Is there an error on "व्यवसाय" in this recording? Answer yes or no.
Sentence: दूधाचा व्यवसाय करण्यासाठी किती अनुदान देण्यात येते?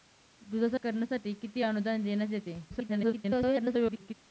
yes